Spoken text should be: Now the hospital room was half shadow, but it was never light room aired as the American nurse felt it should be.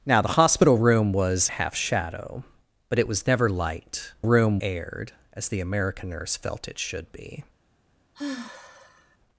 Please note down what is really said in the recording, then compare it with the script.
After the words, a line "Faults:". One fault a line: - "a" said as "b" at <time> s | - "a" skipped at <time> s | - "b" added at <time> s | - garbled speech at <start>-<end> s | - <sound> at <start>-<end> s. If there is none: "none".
Now the hospital room was half shadow, but it was never light room aired as the American nurse felt it should be.
Faults:
- sigh at 8.1-9.2 s